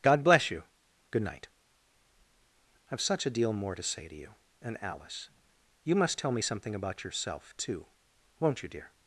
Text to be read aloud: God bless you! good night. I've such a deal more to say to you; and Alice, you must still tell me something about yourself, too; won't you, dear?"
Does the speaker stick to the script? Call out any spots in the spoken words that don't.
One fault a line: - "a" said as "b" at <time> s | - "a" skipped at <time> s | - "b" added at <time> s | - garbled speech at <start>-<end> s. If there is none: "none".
- "still" skipped at 6.2 s